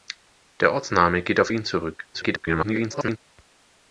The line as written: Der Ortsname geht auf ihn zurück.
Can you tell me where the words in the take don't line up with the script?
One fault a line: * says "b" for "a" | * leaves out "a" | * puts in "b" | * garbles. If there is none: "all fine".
* garbles